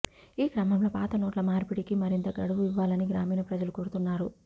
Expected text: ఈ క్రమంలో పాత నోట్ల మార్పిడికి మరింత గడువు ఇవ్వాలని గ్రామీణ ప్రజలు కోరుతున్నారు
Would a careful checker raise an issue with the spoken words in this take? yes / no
no